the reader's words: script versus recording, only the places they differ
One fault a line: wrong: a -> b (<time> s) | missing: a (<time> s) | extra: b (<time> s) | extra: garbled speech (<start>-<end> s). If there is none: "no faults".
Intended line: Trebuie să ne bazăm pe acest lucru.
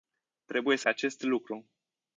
missing: ne bazăm (0.9 s)